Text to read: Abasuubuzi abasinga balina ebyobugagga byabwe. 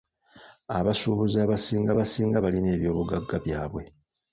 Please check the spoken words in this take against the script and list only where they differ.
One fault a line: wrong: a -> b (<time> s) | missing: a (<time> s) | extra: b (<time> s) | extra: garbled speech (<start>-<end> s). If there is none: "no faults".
extra: abasinga (1.9 s)